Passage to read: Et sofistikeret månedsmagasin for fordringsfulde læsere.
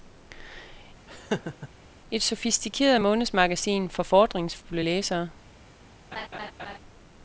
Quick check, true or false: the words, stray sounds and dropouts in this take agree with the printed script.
false